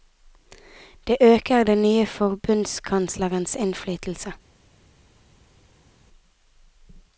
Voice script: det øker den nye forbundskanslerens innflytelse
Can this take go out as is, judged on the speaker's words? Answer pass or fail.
pass